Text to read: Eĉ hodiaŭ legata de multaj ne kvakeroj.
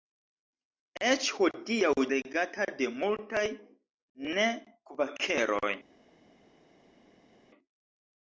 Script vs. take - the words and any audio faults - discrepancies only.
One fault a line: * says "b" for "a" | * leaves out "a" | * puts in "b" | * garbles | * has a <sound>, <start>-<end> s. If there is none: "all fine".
all fine